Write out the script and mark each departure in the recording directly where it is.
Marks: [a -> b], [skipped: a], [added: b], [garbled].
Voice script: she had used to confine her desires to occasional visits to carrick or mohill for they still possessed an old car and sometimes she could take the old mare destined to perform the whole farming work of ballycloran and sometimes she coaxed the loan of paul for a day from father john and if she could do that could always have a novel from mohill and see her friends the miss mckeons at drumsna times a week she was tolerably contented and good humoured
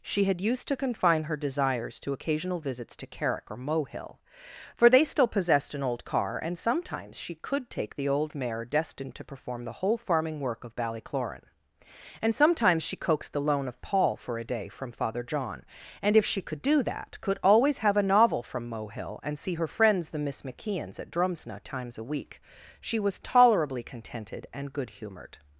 she had used to confine her desires to occasional visits to carrick or mohill for they still possessed an old car and sometimes she could take the old mare destined to perform the whole farming work of ballycloran and sometimes she coaxed the loan of paul for a day from father john and if she could do that could always have a novel from mohill and see her friends the miss mckeons at drumsna times a week she was tolerably contented and good humoured